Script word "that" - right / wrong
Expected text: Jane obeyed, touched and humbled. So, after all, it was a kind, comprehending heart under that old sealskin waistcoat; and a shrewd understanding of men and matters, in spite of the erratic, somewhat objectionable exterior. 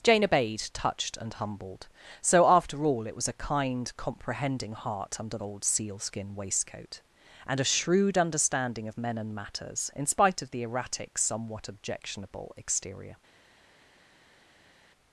wrong